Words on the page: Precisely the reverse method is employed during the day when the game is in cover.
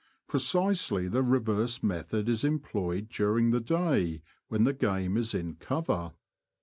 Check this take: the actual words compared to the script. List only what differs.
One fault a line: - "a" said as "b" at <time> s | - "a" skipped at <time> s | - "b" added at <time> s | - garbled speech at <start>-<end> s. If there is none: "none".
none